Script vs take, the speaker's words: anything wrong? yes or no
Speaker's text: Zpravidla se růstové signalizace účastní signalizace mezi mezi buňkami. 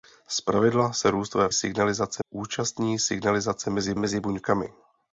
no